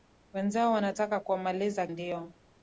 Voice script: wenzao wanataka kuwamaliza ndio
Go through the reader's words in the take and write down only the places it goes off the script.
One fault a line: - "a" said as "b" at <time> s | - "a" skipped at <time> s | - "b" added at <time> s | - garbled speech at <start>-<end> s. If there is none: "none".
none